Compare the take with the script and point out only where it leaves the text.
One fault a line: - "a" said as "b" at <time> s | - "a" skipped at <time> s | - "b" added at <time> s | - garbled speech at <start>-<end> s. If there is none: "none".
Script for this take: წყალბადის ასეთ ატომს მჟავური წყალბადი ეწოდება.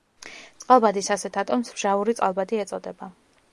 none